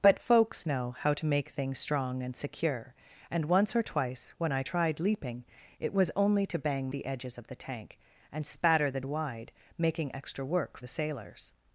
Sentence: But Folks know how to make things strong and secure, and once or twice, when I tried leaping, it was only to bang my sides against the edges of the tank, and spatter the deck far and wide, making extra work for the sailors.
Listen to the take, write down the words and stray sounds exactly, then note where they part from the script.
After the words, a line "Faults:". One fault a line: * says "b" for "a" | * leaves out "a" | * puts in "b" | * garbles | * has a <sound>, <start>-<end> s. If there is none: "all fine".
But Folks know how to make things strong and secure, and once or twice, when I tried leaping, it was only to bang the edges of the tank, and spatter the wide, making extra work the sailors.
Faults:
* leaves out "my sides against"
* leaves out "deck far and"
* leaves out "for"